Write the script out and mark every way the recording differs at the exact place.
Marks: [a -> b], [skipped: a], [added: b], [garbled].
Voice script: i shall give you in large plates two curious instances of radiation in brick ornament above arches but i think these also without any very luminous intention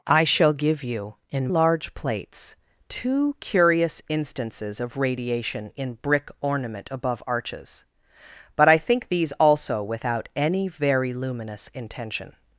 i shall give you in large plates two curious instances of radiation in brick ornament above arches but i think these also without any very luminous intention